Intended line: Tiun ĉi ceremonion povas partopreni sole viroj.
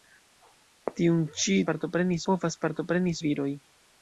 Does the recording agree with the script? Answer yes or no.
no